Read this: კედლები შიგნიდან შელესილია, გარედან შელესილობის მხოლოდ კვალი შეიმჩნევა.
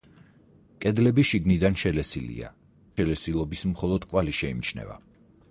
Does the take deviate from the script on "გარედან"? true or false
true